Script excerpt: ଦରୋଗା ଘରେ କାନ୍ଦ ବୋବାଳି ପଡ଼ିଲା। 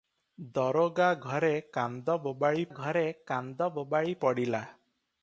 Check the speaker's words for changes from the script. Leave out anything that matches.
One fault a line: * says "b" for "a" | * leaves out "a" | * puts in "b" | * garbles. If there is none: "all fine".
* puts in "ଘରେ କାନ୍ଦ ବୋବାଳି"